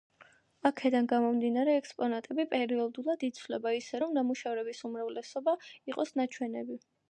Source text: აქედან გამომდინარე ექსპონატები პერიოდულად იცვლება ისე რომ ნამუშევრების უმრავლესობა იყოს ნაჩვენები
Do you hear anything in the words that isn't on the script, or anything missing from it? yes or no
no